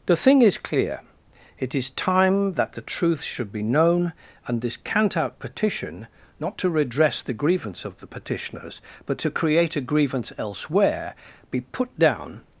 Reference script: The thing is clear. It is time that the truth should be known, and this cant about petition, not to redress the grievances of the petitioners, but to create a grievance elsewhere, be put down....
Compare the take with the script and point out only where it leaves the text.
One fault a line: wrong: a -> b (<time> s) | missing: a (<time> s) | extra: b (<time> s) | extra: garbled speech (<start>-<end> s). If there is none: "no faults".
wrong: about -> out (5.2 s)
wrong: grievances -> grievance (7.3 s)